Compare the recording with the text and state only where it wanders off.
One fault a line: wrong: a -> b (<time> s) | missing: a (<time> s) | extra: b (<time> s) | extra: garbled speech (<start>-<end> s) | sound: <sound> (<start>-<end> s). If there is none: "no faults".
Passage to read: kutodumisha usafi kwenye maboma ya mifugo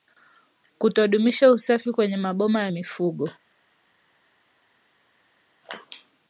no faults